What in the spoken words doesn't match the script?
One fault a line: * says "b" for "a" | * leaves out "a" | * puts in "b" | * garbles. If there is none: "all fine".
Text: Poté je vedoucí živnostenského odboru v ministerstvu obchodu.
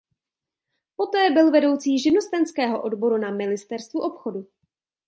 * says "byl" for "je"
* says "na" for "v"